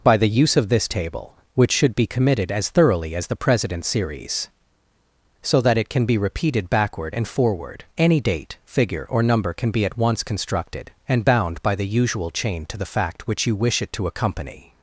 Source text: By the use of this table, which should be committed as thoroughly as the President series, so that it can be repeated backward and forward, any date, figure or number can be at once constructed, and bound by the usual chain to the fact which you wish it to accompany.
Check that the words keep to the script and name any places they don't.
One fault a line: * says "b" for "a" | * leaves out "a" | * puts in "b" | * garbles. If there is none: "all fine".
all fine